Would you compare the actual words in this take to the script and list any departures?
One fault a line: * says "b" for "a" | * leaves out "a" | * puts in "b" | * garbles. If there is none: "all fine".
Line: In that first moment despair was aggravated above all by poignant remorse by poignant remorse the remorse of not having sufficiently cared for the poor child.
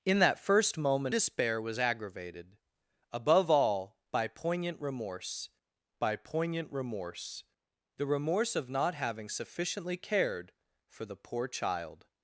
all fine